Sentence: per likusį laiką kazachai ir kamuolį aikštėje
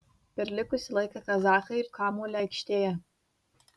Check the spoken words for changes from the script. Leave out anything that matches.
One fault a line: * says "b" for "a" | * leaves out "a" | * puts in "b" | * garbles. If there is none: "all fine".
all fine